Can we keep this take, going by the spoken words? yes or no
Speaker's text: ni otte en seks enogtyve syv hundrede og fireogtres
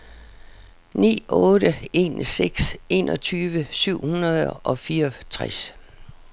yes